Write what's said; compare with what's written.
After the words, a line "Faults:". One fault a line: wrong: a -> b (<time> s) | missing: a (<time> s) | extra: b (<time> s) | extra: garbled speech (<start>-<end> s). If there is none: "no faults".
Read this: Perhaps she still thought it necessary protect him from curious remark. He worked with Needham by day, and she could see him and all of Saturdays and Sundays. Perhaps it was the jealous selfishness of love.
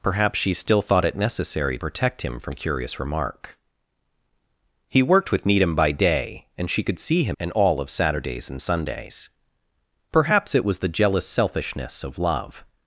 Perhaps she still thought it necessary protect him from curious remark. He worked with Needham by day, and she could see him and all of Saturdays and Sundays. Perhaps it was the jealous selfishness of love.
Faults:
no faults